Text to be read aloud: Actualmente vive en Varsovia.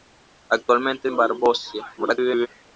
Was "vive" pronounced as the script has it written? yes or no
no